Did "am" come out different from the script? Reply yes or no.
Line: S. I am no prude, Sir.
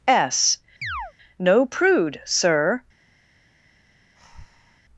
yes